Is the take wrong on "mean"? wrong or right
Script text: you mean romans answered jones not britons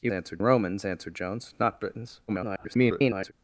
wrong